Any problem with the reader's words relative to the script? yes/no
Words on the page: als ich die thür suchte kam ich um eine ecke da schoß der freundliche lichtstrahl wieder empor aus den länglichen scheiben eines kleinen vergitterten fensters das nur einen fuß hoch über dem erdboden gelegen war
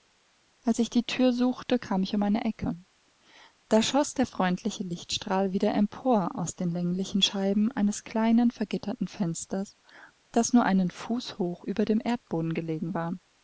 no